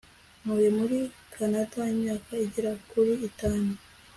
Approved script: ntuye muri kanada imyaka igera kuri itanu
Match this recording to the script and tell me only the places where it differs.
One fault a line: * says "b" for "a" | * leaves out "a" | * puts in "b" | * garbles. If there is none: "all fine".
all fine